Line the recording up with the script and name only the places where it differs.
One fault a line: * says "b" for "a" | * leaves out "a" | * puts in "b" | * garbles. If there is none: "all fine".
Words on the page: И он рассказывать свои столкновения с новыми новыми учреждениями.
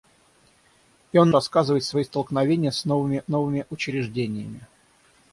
all fine